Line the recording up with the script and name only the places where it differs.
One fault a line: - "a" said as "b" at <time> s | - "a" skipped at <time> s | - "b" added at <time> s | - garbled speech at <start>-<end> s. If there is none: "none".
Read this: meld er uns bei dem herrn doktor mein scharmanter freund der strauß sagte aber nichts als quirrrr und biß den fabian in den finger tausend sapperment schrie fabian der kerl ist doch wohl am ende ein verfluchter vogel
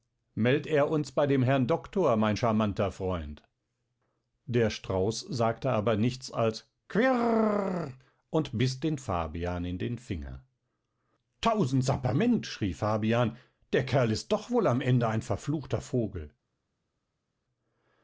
none